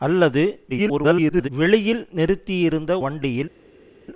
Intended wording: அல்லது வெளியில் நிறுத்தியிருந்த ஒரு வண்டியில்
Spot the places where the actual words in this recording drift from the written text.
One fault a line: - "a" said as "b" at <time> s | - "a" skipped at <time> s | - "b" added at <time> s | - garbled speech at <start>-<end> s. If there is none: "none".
- garbled speech at 0.7-1.5 s
- "ஒரு" skipped at 2.9 s